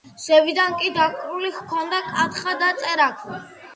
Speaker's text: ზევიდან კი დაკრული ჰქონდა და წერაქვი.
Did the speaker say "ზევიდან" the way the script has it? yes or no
yes